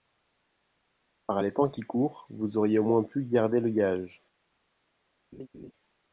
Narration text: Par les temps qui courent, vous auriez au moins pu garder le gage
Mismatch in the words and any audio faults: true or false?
true